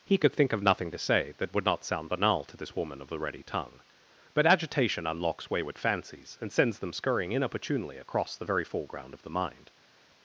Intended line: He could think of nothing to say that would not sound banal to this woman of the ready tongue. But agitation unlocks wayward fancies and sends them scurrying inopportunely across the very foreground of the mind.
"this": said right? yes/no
yes